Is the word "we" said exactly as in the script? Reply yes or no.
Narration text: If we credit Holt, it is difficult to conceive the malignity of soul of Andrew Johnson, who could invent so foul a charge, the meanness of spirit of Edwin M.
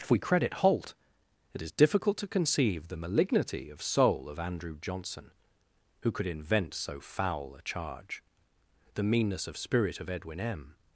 yes